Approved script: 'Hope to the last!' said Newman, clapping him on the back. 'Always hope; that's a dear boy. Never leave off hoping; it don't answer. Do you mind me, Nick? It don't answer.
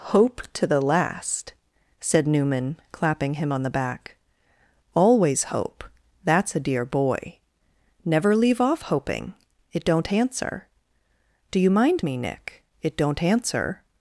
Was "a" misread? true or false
false